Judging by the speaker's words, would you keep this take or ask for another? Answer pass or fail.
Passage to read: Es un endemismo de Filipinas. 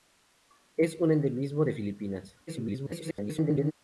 fail